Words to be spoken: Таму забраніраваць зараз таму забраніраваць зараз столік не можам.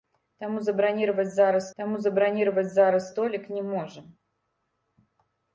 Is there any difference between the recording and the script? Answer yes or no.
no